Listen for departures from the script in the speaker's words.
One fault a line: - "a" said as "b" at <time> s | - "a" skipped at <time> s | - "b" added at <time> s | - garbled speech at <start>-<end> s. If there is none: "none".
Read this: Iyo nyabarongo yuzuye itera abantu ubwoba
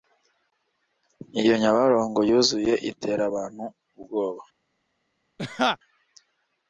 none